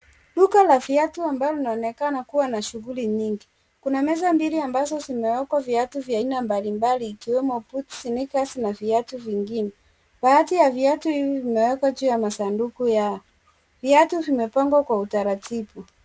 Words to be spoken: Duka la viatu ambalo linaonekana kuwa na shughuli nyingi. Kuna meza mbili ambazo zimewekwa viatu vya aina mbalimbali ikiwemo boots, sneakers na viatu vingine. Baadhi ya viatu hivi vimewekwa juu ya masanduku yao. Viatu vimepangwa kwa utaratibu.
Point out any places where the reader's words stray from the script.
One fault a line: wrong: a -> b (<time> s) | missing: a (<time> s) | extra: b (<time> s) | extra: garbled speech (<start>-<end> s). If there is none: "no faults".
no faults